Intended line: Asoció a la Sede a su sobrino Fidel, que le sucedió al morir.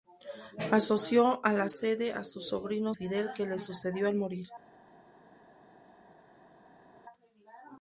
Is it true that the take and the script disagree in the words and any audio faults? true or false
false